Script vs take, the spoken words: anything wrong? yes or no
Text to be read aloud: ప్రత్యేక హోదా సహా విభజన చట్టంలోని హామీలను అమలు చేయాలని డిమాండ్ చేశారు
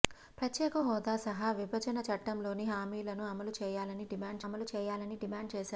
yes